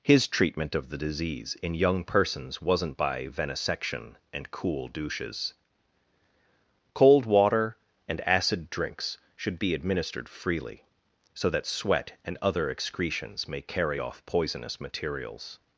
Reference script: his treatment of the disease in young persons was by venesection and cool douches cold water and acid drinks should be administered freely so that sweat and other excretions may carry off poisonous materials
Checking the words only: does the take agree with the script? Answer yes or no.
no